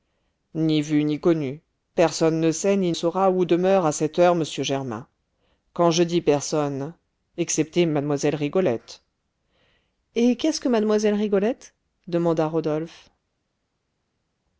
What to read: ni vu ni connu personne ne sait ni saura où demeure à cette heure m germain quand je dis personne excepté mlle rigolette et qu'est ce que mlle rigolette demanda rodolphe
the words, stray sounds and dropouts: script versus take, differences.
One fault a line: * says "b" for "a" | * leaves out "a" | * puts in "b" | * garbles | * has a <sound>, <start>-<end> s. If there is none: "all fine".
all fine